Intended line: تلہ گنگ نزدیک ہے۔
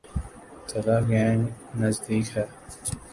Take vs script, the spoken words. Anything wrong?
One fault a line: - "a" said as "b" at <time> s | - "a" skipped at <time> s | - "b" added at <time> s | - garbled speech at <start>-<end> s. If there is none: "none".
none